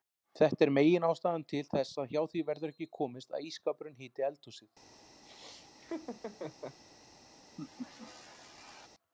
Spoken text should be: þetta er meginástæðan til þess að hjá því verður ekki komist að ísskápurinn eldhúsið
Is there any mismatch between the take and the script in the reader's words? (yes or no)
yes